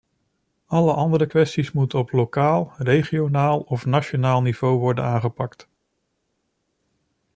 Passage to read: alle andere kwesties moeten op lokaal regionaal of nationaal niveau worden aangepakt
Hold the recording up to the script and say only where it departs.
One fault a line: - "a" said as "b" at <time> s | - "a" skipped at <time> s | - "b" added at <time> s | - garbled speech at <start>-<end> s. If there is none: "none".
none